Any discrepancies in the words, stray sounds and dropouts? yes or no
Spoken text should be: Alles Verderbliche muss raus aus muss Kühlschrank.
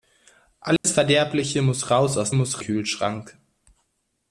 yes